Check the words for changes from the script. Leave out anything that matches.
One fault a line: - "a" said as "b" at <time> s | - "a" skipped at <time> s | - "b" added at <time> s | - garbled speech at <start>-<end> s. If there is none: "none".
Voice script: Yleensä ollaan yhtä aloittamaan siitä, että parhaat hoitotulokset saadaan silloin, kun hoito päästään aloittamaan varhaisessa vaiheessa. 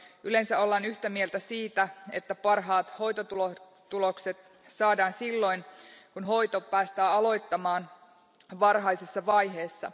- "aloittamaan" said as "mieltä" at 1.1 s